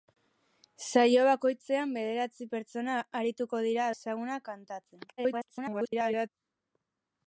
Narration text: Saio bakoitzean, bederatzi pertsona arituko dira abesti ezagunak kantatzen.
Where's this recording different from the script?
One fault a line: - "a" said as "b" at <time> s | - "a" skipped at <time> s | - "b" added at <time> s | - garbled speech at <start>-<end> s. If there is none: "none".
- "abesti" skipped at 3.9 s
- garbled speech at 5.2-6.3 s